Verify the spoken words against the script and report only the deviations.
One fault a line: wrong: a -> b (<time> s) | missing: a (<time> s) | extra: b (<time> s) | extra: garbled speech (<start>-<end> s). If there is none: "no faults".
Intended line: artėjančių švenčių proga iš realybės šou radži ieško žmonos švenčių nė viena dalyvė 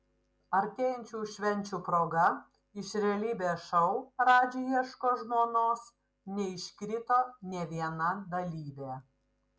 wrong: švenčių -> neiškrito (6.4 s)